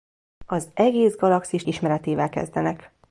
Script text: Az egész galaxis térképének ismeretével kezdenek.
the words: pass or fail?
fail